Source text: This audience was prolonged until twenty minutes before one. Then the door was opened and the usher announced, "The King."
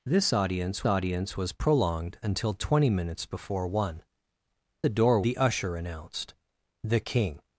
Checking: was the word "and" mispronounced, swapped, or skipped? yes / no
yes